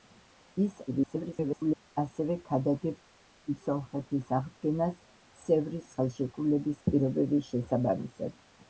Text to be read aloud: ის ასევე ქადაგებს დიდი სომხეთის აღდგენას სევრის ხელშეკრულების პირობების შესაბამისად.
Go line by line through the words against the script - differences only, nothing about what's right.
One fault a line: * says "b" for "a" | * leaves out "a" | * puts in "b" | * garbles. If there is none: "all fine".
* garbles